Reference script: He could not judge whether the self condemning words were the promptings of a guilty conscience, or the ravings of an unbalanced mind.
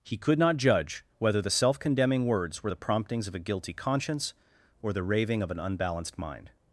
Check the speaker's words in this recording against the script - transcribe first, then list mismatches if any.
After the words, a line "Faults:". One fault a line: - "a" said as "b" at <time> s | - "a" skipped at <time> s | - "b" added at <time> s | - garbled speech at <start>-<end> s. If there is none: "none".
He could not judge whether the self condemning words were the promptings of a guilty conscience, or the raving of an unbalanced mind.
Faults:
- "ravings" said as "raving" at 5.0 s